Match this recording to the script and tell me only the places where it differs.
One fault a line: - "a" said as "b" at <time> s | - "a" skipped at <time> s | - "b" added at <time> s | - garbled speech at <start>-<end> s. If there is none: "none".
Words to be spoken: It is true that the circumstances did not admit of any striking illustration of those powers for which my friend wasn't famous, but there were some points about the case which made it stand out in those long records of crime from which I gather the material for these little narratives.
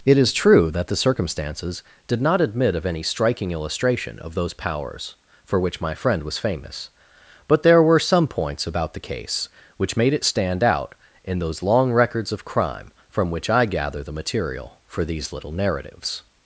- "wasn't" said as "was" at 6.2 s